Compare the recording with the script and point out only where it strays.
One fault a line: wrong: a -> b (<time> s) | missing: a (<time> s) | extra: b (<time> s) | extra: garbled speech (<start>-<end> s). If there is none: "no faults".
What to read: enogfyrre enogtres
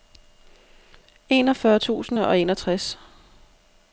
extra: tusind og (1.8 s)